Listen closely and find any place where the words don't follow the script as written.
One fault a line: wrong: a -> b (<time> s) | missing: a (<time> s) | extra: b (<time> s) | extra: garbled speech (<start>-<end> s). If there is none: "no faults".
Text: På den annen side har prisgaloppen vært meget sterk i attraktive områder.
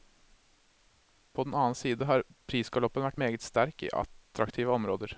no faults